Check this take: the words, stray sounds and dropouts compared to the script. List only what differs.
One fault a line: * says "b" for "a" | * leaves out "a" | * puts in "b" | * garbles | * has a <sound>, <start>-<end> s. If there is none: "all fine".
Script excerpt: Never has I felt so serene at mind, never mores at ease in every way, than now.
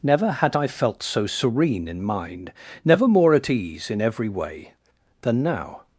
* says "had" for "has"
* says "in" for "at"
* says "more" for "mores"